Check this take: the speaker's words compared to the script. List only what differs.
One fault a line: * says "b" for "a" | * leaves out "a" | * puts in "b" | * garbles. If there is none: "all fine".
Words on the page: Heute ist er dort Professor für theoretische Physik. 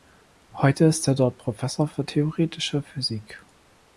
all fine